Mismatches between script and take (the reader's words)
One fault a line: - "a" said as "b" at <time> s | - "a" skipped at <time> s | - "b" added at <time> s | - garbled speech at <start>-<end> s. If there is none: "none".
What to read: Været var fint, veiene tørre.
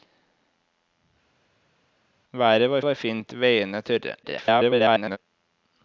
- "var" added at 2.8 s
- garbled speech at 4.2-5.2 s